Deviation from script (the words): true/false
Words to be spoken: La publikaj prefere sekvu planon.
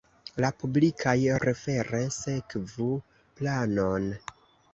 false